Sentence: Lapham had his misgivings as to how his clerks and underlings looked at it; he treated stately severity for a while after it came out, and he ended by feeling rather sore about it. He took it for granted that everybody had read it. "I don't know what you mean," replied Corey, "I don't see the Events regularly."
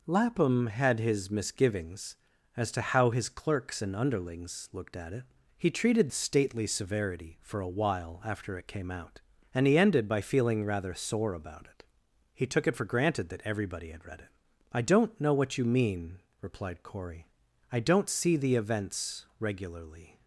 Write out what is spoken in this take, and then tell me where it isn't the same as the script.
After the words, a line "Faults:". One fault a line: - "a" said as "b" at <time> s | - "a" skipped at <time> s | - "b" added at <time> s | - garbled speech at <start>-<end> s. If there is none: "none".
Lapham had his misgivings as to how his clerks and underlings looked at it; he treated stately severity for a while after it came out, and he ended by feeling rather sore about it. He took it for granted that everybody had read it. "I don't know what you mean," replied Corey, "I don't see the Events regularly."
Faults:
none